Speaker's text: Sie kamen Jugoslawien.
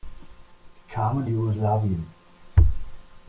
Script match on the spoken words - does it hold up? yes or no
yes